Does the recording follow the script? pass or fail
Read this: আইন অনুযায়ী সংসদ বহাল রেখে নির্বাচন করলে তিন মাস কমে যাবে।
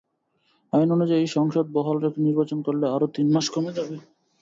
fail